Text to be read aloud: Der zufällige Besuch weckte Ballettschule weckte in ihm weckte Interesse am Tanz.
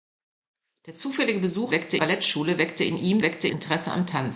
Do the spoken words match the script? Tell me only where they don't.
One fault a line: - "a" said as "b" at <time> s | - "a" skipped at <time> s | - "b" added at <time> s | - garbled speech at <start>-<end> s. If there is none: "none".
none